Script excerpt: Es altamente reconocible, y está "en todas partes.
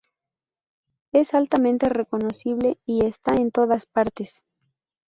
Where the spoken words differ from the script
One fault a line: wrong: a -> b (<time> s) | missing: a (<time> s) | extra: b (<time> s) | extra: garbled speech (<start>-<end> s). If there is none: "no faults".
no faults